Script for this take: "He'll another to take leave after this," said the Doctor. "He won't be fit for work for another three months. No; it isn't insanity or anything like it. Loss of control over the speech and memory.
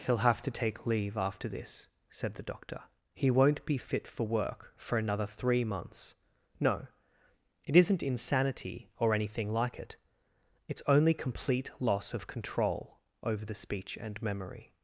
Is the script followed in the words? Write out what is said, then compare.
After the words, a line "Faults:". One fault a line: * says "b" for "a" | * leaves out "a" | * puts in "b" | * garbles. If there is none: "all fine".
"He'll have to take leave after this," said the Doctor. "He won't be fit for work for another three months. No; it isn't insanity or anything like it. It's only complete loss of control over the speech and memory.
Faults:
* says "have" for "another"
* puts in "It's only complete"